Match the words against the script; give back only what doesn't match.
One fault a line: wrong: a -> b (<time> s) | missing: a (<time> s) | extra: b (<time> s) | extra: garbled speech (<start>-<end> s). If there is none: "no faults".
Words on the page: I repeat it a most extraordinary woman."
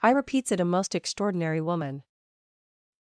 wrong: repeat -> repeats (0.1 s)